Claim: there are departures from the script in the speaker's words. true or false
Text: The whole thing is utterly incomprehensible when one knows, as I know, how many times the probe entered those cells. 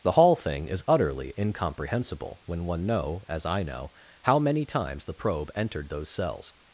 true